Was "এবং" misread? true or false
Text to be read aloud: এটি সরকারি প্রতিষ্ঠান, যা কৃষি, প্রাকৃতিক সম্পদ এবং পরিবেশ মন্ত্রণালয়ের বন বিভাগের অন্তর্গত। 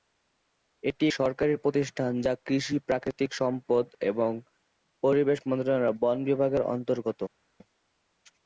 false